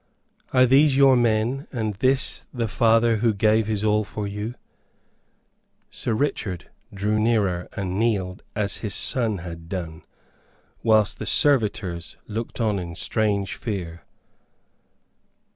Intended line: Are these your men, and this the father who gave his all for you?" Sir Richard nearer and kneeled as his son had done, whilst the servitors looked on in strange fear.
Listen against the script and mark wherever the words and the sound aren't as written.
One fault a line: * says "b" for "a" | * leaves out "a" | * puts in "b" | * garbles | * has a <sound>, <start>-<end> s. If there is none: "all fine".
* puts in "drew"